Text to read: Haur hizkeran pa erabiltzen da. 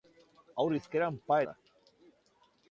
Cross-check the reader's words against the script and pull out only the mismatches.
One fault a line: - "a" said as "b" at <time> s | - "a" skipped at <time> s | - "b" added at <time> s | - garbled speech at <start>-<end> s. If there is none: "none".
- "erabiltzen" skipped at 1.4 s